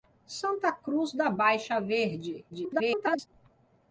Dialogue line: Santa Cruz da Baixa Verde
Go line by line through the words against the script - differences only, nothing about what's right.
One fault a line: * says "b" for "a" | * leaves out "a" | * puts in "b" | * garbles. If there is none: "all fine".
* garbles